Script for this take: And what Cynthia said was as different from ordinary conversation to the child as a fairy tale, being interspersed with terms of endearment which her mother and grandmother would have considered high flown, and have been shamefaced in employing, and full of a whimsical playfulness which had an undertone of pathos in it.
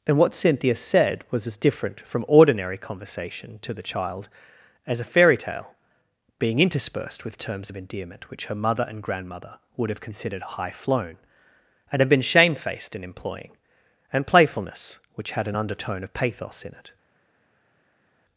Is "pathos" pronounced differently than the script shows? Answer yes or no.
no